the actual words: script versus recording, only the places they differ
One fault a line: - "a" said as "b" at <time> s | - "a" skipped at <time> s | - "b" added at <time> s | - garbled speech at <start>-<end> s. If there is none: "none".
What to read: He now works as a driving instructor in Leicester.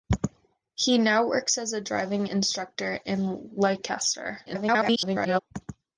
- garbled speech at 4.5-5.4 s